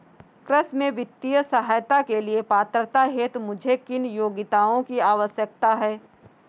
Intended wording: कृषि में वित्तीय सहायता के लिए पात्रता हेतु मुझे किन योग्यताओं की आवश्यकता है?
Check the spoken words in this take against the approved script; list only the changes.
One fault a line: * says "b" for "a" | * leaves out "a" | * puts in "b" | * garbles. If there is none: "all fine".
all fine